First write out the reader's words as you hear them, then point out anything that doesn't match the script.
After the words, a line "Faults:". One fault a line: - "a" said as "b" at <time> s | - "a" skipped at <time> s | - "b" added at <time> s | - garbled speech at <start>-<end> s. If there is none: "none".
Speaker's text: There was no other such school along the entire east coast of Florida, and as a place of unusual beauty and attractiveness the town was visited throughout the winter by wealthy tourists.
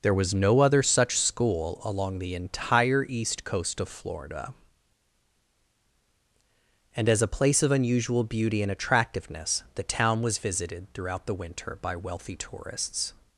There was no other such school along the entire east coast of Florida, and as a place of unusual beauty and attractiveness the town was visited throughout the winter by wealthy tourists.
Faults:
none